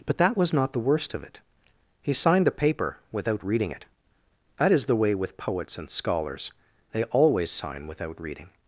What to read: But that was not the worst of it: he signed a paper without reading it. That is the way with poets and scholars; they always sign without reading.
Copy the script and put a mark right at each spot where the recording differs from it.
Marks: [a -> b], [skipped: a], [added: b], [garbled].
But that was not the worst of it: he signed a paper without reading it. That is the way with poets and scholars; they always sign without reading.